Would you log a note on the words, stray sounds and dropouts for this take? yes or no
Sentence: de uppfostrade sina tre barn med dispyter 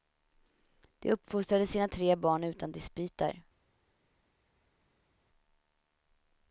yes